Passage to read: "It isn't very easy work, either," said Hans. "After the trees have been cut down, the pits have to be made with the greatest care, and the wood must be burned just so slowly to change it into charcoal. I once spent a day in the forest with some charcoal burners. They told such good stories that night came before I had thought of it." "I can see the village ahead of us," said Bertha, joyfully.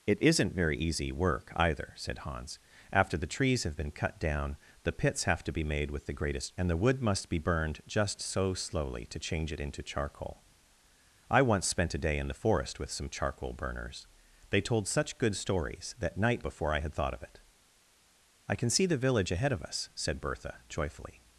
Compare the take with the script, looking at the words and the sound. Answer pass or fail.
fail